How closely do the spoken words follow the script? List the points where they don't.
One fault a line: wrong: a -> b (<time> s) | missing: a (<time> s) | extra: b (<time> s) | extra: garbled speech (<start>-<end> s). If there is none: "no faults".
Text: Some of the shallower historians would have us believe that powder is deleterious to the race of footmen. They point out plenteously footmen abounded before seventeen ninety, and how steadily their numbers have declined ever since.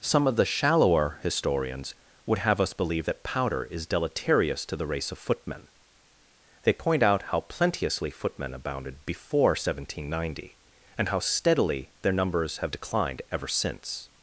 extra: how (7.2 s)